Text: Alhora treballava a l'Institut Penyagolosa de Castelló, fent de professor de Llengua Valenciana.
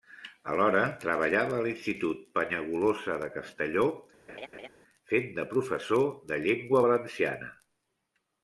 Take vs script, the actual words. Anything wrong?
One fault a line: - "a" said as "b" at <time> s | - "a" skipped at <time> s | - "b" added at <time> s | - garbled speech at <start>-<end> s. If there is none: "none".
none